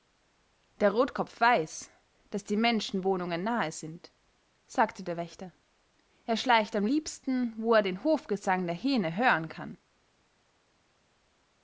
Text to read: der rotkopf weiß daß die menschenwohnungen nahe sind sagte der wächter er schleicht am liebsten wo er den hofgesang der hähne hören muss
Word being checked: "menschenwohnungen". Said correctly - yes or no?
yes